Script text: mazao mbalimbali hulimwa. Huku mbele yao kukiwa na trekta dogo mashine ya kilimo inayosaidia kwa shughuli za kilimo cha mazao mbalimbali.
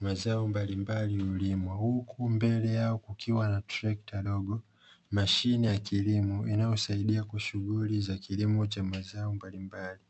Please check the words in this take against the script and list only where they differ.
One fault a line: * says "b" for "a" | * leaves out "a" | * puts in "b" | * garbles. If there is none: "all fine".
all fine